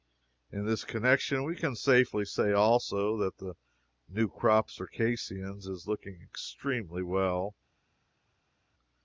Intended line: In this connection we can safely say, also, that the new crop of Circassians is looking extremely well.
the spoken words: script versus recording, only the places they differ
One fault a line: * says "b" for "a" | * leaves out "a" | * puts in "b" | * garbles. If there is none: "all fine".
* leaves out "of"